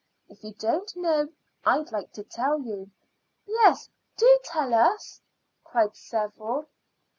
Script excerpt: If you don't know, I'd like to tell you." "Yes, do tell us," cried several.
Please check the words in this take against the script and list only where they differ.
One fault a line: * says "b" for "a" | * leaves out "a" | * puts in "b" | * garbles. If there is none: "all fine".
all fine